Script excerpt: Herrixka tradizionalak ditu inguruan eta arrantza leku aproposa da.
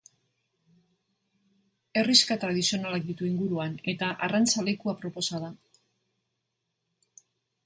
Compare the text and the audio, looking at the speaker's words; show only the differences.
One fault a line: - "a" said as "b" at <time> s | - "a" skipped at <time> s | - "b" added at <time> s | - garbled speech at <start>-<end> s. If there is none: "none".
none